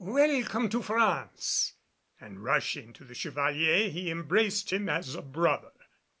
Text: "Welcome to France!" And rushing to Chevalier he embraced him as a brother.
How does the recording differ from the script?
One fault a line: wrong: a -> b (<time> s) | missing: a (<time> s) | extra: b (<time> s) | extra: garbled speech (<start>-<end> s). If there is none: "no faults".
extra: the (3.0 s)